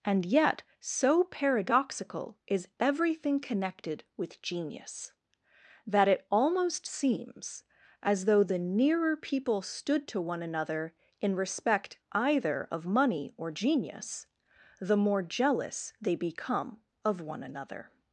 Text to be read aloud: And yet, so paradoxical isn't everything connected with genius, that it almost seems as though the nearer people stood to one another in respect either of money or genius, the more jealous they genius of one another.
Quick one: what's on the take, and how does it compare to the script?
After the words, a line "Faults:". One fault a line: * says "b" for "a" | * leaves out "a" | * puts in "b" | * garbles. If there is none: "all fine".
And yet, so paradoxical is everything connected with genius, that it almost seems as though the nearer people stood to one another in respect either of money or genius, the more jealous they become of one another.
Faults:
* says "is" for "isn't"
* says "become" for "genius"